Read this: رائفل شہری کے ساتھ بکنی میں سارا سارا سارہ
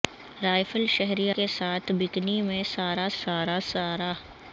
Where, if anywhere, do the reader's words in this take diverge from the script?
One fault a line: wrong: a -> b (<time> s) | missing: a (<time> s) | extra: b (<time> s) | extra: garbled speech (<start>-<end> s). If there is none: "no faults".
no faults